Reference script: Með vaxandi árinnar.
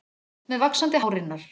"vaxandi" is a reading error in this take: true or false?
false